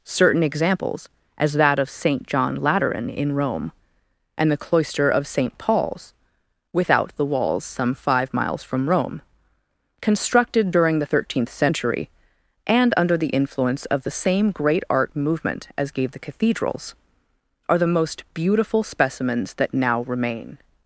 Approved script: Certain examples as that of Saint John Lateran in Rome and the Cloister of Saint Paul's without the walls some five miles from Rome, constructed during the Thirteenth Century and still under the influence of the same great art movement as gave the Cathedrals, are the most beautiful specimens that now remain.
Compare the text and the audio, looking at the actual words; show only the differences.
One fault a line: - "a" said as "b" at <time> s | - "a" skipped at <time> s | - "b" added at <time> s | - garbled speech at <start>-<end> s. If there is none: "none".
- "still" skipped at 12.9 s